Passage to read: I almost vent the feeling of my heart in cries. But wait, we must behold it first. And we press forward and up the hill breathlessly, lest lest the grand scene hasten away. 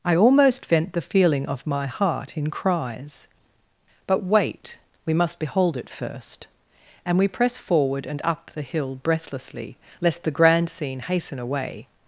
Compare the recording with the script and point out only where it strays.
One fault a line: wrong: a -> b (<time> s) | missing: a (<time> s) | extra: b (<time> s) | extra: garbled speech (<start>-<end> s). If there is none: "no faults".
missing: lest (10.2 s)